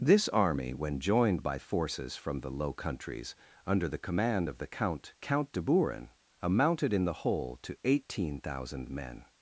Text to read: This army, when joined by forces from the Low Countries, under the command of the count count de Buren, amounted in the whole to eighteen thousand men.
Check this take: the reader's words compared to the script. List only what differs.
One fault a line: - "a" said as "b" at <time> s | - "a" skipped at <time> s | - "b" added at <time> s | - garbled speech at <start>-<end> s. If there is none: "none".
none